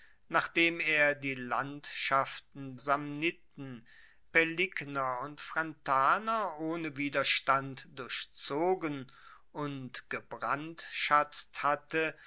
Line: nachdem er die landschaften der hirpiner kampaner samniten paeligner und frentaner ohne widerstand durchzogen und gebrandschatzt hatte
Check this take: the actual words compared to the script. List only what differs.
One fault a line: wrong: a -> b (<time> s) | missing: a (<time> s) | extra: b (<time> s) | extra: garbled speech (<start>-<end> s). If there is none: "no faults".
missing: der hirpiner kampaner (2.8 s)